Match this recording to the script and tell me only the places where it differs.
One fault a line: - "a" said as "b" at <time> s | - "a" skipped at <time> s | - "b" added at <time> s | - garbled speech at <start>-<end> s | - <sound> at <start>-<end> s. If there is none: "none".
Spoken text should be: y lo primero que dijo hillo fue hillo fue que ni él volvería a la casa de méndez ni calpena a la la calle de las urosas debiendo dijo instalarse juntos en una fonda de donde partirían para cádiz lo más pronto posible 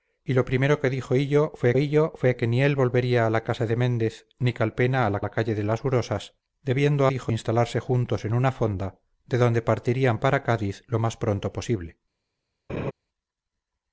- laugh at 12.7-12.9 s